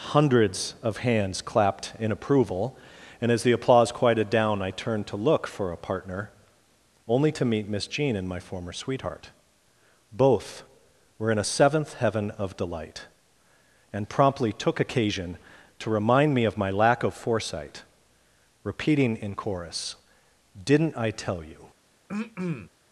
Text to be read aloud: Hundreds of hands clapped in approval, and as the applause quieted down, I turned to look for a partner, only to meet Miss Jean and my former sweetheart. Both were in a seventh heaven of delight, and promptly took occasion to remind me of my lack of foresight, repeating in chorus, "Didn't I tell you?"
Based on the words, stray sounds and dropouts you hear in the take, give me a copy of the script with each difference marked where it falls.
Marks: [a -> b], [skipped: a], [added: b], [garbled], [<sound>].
Hundreds of hands clapped in approval, and as the applause quieted down, I turned to look for a partner, only to meet Miss Jean and my former sweetheart. Both were in a seventh heaven of delight, and promptly took occasion to remind me of my lack of foresight, repeating in chorus, "Didn't I tell you?" [throat clearing]